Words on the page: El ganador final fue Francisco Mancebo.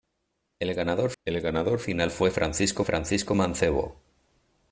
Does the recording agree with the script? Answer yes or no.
no